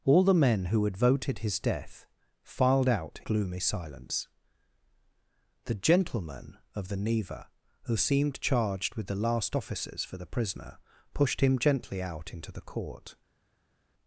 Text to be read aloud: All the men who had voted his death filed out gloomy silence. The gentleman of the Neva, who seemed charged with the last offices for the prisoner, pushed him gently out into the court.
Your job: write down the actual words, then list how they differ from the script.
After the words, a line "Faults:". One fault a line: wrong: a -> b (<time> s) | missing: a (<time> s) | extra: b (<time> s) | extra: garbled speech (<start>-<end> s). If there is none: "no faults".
All the men who had voted his death filed out gloomy silence. The gentleman of the Neva, who seemed charged with the last offices for the prisoner, pushed him gently out into the court.
Faults:
no faults